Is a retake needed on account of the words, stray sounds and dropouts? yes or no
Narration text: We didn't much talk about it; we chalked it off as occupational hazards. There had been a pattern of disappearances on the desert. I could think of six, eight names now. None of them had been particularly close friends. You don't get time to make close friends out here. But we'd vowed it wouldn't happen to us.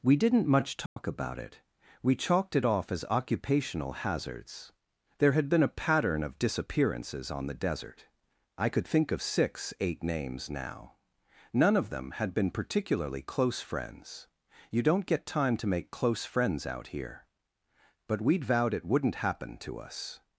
yes